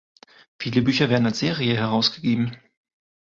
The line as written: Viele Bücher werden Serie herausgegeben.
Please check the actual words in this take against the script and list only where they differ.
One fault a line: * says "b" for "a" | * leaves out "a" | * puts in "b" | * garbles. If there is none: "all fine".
* puts in "als"